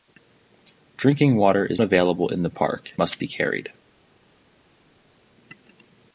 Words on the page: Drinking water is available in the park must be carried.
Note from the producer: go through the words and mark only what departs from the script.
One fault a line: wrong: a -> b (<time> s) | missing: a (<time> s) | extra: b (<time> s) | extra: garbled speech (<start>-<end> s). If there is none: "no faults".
no faults